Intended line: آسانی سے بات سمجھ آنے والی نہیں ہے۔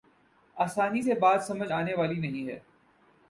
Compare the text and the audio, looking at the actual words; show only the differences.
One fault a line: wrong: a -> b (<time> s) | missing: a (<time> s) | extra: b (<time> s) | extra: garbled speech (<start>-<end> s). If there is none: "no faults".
no faults